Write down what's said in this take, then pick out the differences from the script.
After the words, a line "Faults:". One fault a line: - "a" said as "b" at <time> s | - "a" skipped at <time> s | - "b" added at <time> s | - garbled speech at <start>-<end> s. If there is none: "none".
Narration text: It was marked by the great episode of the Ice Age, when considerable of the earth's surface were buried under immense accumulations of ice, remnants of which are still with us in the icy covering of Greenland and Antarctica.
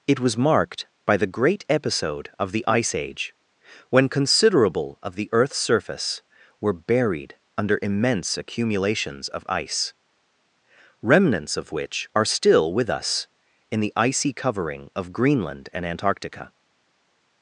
It was marked by the great episode of the Ice Age, when considerable of the earth's surface were buried under immense accumulations of ice, remnants of which are still with us in the icy covering of Greenland and Antarctica.
Faults:
none